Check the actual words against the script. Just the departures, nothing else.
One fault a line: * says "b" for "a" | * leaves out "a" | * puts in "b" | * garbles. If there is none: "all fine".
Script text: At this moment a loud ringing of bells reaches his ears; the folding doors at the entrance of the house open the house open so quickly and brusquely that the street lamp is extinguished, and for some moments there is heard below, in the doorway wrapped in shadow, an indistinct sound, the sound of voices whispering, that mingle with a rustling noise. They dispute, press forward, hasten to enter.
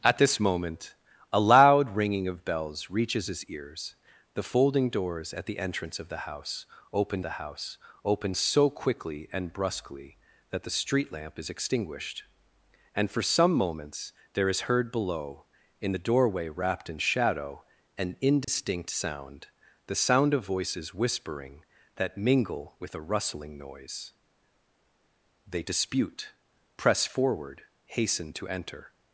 all fine